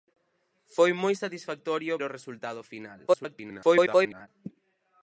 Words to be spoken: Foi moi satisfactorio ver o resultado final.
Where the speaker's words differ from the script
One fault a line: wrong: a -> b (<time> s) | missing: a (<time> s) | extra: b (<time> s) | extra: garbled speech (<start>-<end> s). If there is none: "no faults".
missing: ver (1.9 s)
extra: garbled speech (3.1-4.3 s)